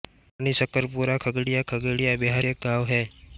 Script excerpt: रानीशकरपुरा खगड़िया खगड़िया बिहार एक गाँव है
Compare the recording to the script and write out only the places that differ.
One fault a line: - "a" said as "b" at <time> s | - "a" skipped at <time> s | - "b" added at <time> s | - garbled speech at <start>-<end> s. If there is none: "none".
none